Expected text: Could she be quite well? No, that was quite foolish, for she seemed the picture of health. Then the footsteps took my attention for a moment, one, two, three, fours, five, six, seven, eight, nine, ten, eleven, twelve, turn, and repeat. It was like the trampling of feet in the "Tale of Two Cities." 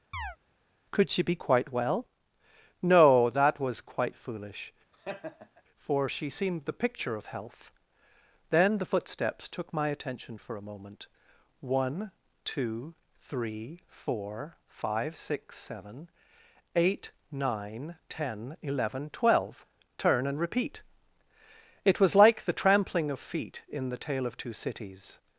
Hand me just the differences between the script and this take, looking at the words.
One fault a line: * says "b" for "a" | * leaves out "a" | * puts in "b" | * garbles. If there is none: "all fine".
* says "four" for "fours"